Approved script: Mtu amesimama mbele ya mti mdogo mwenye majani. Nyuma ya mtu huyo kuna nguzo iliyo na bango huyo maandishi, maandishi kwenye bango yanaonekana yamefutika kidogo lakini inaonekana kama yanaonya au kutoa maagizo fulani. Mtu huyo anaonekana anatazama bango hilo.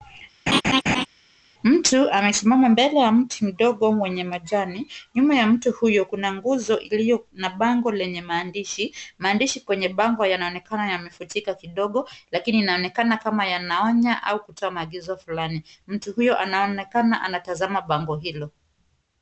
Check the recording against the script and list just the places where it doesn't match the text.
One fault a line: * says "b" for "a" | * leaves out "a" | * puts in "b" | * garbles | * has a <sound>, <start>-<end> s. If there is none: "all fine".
* has a laugh, 0.5-1.1 s
* says "lenye" for "huyo"